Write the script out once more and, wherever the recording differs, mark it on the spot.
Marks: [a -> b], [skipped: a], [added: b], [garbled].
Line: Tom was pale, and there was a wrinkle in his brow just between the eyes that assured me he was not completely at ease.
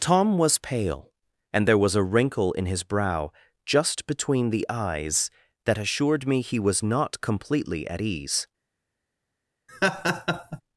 Tom was pale, and there was a wrinkle in his brow just between the eyes that assured me he was not completely at ease.